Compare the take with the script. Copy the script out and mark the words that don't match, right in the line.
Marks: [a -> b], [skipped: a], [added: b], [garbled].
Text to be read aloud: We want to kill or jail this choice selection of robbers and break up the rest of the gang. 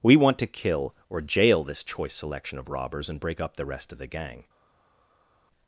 We want to kill or jail this choice selection of robbers and break up the rest of the gang.